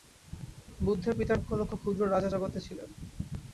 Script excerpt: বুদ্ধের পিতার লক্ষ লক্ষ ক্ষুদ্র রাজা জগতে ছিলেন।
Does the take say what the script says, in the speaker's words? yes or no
yes